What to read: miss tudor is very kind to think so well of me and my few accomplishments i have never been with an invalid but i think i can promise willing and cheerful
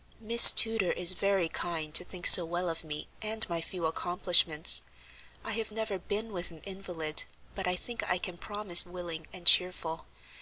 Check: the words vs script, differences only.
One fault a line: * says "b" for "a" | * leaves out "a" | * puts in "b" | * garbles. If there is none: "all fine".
all fine